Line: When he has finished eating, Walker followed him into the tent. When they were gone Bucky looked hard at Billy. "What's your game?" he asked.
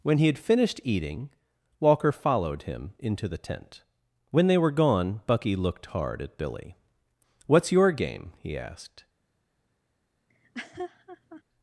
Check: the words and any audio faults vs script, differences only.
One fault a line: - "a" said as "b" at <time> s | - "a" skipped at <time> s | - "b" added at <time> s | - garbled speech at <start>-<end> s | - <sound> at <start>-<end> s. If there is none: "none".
- "has" said as "had" at 0.2 s
- laugh at 10.3-11.4 s